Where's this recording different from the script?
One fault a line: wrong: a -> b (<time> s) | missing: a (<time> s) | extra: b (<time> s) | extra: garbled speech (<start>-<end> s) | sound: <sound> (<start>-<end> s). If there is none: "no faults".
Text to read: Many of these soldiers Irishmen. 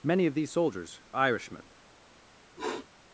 sound: sniff (2.6-2.9 s)